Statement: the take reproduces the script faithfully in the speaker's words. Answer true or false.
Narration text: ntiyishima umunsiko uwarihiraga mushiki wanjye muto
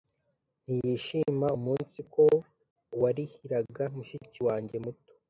true